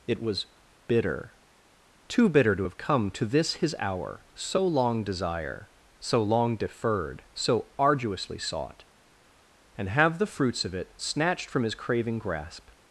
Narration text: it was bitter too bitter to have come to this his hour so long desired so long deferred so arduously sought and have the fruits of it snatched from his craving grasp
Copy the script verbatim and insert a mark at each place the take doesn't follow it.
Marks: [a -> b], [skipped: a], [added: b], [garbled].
it was bitter too bitter to have come to this his hour so long [desired -> desire] so long deferred so arduously sought and have the fruits of it snatched from his craving grasp